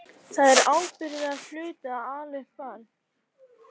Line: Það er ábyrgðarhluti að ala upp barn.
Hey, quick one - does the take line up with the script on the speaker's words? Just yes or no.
yes